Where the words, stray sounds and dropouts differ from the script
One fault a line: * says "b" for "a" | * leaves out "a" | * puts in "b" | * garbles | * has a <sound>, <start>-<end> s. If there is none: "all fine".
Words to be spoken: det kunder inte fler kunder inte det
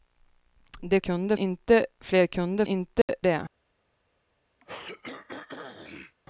* has a dropout, 3.0-3.1 s
* has a throat clearing, 4.6-6.2 s